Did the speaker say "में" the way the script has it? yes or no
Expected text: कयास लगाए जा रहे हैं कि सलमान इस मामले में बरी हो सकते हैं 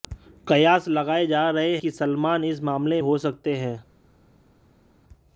no